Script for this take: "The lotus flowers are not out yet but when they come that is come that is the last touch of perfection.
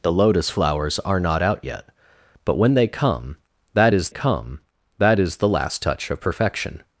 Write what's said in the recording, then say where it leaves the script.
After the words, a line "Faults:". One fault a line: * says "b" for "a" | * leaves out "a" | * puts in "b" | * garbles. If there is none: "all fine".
"The lotus flowers are not out yet but when they come that is come that is the last touch of perfection.
Faults:
all fine